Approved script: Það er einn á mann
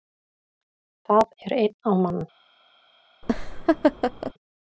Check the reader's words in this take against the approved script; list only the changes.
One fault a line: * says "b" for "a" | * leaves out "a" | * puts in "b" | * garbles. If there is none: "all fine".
all fine